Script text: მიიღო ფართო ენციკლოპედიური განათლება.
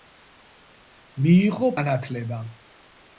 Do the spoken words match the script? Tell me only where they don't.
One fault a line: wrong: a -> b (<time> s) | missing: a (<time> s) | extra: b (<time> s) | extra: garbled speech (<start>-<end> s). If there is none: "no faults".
missing: ფართო ენციკლოპედიური (1.7 s)